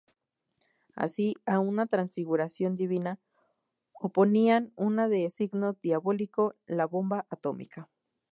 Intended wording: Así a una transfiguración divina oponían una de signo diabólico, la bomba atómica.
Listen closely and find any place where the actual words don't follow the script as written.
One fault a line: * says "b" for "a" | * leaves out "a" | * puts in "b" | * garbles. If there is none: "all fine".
all fine